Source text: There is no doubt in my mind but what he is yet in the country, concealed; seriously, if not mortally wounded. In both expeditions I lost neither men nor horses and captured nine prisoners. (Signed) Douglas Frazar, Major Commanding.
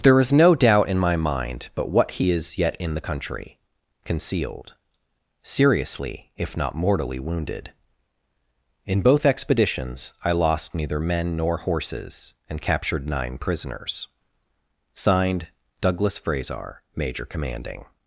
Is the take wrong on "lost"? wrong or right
right